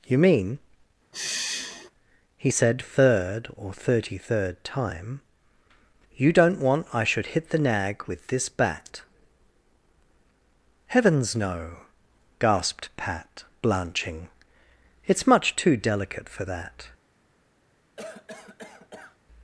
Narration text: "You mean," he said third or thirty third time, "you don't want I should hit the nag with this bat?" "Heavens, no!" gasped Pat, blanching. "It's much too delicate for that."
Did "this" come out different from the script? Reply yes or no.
no